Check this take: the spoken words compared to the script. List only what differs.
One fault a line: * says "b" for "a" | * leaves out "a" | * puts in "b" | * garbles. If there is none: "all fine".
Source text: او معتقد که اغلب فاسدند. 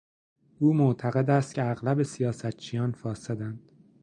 * puts in "است"
* puts in "سیاستچیان"